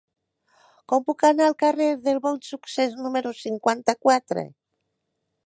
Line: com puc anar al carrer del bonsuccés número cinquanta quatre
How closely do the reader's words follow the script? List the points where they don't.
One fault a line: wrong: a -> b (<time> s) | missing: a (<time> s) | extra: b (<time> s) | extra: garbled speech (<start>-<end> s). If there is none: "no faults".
no faults